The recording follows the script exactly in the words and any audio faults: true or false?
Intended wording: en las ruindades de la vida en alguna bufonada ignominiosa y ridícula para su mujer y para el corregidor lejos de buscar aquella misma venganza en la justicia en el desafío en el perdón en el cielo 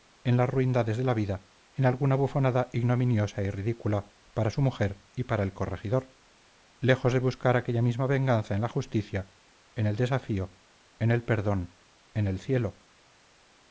true